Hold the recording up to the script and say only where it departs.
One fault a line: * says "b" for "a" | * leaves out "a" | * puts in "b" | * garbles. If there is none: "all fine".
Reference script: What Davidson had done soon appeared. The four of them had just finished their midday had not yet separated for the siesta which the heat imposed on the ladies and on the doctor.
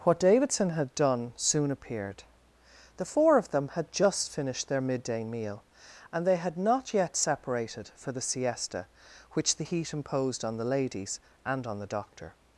* puts in "meal and they"